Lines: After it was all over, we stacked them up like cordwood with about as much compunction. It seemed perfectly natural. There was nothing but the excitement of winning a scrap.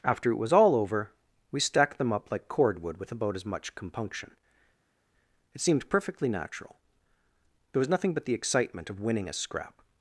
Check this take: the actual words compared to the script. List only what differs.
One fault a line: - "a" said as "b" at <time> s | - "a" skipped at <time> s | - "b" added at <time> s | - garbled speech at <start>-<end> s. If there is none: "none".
none